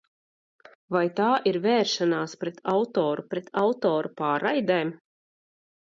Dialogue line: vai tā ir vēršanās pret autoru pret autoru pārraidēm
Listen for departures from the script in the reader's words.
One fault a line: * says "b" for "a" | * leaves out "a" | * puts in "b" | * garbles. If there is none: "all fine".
all fine